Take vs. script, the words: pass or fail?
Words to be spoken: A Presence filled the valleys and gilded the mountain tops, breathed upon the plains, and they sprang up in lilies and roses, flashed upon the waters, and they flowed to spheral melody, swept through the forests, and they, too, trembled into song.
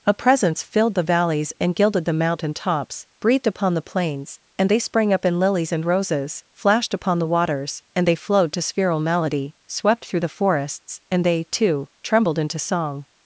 pass